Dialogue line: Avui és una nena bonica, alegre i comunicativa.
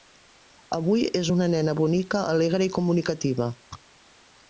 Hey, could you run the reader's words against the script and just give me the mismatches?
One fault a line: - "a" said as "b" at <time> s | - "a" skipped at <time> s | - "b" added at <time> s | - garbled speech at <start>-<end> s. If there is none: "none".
none